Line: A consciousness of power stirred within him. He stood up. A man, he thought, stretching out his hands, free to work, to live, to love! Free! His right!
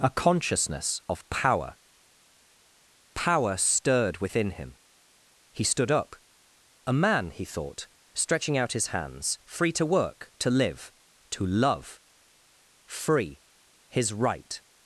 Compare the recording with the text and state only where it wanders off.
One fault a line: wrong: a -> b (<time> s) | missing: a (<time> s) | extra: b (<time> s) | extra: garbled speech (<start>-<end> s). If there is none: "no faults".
extra: power (3.1 s)